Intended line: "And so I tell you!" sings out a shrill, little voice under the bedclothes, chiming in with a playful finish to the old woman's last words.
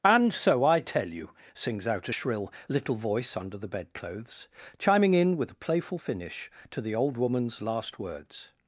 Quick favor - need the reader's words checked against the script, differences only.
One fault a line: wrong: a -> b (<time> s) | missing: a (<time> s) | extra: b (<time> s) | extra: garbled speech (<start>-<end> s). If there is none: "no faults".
no faults